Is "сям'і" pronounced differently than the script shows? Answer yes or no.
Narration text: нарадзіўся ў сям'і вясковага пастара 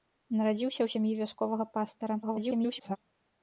no